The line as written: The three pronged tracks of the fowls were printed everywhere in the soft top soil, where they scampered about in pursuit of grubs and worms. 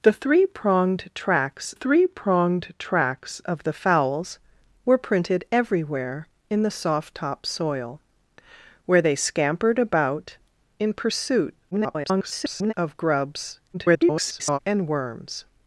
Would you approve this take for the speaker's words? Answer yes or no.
no